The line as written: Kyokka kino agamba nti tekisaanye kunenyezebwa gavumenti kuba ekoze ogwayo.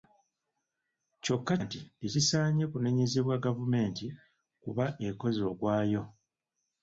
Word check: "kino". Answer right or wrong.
wrong